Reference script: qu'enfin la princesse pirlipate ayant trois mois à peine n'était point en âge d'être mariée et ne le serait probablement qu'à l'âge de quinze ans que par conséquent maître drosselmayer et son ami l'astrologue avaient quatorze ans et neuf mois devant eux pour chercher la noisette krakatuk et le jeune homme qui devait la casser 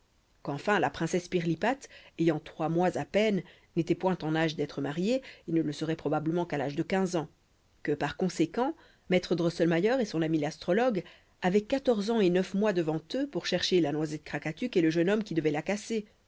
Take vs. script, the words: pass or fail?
pass